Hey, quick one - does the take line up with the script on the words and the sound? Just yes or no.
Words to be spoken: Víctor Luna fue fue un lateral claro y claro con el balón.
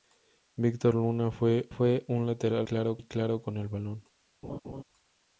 no